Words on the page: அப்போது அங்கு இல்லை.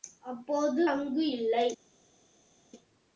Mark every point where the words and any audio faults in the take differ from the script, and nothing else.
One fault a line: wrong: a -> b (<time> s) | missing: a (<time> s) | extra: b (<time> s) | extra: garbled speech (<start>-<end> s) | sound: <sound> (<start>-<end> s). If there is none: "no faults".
no faults